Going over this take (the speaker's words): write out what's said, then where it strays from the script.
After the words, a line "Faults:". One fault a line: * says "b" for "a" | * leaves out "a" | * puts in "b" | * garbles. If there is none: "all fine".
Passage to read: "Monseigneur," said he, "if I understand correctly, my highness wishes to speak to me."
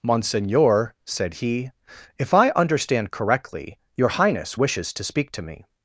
"Monseigneur," said he, "if I understand correctly, your highness wishes to speak to me."
Faults:
* says "your" for "my"